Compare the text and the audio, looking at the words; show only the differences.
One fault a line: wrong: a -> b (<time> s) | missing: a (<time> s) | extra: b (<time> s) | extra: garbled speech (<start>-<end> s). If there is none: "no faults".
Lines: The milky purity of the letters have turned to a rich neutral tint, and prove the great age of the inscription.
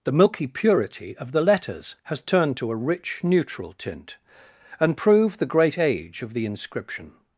wrong: have -> has (2.0 s)